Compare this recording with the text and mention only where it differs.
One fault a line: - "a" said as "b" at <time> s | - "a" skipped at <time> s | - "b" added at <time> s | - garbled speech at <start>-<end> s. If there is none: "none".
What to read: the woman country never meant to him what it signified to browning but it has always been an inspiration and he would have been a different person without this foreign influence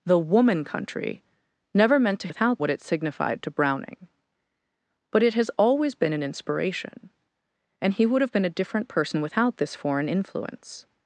- "him" said as "without" at 2.3 s